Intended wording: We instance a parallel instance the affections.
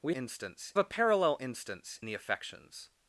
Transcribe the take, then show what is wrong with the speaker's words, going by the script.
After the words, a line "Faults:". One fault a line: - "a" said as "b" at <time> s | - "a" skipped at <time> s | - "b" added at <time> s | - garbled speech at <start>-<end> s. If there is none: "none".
We instance a parallel instance the affections.
Faults:
none